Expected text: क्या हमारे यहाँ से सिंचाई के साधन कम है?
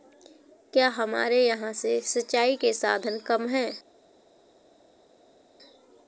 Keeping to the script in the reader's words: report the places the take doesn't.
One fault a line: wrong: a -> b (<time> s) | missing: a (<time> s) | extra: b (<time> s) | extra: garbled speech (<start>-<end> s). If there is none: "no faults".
no faults